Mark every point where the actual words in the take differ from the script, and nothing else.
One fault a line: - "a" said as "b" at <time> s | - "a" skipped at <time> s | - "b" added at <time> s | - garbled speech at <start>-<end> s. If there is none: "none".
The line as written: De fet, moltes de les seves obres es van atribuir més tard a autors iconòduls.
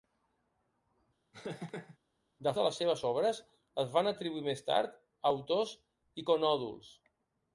- "fet moltes" skipped at 2.5 s